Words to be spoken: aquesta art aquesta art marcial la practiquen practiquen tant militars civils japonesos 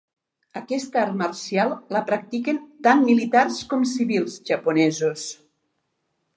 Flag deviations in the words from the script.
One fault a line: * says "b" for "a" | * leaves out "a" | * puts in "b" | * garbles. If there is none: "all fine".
* leaves out "aquesta art"
* leaves out "practiquen"
* puts in "com"